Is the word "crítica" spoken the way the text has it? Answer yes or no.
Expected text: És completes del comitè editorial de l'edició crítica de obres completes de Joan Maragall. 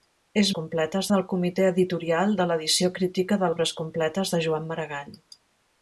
yes